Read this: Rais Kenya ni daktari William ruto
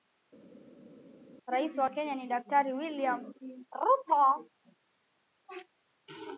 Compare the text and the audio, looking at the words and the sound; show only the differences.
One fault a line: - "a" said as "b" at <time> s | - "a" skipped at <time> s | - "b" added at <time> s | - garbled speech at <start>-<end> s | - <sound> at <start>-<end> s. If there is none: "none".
- "wa" added at 1.8 s